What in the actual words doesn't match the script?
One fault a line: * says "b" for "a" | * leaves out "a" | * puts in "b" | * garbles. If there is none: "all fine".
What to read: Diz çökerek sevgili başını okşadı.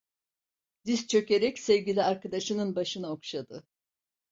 * puts in "arkadaşının"